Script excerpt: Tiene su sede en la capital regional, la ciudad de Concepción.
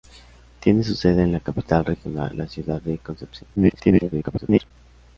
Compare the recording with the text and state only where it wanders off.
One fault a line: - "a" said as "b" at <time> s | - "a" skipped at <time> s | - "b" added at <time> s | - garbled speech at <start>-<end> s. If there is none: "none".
- garbled speech at 3.6-4.7 s